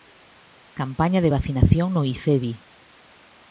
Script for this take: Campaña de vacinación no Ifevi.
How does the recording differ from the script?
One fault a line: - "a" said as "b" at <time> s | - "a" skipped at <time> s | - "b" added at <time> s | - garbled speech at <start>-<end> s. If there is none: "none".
none